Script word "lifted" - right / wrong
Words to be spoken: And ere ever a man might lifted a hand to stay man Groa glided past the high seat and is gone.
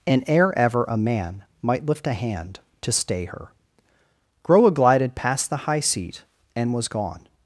wrong